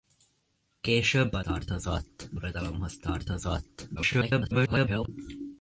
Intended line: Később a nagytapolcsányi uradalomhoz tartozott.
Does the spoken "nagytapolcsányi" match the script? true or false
false